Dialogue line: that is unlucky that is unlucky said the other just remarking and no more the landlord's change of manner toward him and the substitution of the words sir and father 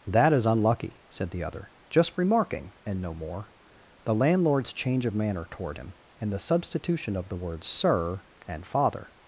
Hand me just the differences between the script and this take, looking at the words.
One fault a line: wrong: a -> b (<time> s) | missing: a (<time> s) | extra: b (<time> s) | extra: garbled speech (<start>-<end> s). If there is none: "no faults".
missing: that is unlucky (1.0 s)